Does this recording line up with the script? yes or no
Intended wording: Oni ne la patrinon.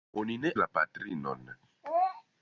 yes